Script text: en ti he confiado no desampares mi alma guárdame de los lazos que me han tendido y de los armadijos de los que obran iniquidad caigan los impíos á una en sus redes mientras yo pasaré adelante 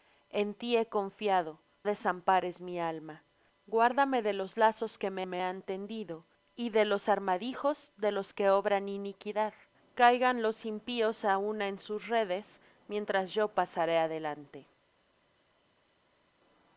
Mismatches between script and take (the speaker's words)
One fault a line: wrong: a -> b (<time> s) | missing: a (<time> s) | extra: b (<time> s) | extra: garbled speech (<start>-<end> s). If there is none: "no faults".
missing: no (1.6 s)
extra: me (5.3 s)